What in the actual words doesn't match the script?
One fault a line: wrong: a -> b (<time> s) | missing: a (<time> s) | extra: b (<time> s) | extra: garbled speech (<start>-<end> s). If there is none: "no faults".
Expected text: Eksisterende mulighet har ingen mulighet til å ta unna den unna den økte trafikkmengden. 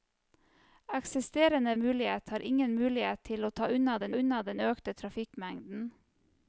no faults